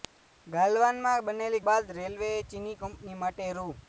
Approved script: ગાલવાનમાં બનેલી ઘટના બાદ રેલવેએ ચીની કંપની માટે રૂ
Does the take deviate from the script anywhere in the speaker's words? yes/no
yes